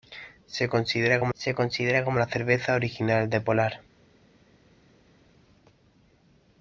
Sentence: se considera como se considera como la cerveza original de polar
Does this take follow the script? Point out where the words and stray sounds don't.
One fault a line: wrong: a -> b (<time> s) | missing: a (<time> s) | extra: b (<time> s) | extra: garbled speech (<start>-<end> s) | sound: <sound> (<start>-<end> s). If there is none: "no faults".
no faults